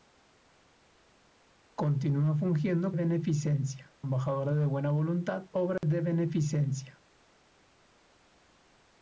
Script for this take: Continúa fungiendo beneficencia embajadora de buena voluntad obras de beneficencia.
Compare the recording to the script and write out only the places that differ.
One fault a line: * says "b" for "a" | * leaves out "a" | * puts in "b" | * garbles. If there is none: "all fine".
all fine